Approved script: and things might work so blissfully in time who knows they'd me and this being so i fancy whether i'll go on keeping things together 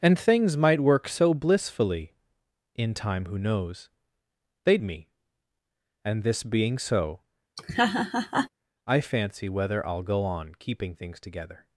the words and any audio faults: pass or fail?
fail